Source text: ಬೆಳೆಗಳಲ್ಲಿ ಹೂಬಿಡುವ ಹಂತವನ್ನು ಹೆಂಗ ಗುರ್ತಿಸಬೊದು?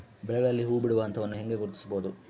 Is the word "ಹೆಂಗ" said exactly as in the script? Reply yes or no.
yes